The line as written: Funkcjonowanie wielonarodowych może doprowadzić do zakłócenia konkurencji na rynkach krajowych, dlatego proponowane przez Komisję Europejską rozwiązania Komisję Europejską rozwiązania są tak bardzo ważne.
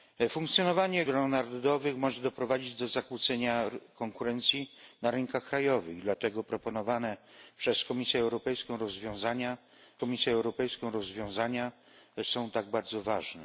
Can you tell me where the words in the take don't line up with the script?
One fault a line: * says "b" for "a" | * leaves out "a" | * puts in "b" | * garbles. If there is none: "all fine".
all fine